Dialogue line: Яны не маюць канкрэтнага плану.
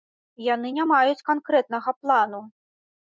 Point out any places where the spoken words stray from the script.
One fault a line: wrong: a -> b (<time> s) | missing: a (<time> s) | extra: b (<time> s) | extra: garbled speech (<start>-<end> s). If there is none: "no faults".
no faults